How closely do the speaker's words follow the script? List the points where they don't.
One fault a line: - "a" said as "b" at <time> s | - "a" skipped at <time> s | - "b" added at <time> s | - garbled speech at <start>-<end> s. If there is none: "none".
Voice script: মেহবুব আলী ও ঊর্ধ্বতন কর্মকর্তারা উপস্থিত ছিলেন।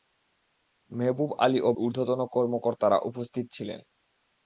none